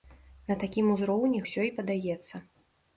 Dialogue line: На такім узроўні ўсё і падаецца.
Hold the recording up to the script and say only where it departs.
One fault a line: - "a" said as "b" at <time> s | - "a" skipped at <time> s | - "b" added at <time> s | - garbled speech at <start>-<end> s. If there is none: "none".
none